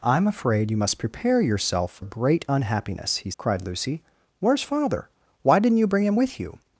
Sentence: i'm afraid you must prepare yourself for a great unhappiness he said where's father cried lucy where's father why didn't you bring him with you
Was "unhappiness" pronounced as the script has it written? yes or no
yes